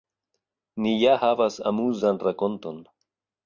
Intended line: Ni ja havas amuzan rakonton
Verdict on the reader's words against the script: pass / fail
pass